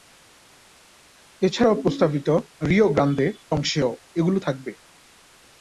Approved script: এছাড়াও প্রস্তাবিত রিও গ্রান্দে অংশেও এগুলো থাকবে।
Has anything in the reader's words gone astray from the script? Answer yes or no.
no